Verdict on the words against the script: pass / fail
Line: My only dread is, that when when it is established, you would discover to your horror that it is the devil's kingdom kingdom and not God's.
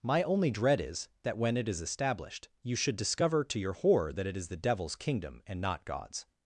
fail